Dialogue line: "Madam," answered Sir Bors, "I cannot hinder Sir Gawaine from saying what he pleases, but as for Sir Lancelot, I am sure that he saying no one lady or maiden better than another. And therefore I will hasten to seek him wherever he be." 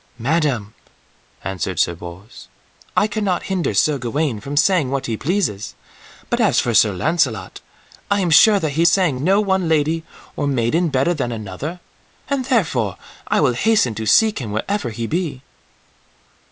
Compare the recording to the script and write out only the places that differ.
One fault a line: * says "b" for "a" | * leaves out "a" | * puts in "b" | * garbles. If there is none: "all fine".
all fine